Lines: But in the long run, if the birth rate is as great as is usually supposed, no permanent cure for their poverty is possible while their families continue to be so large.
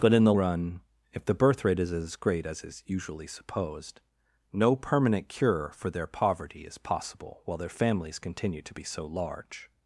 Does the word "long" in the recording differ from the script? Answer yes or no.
yes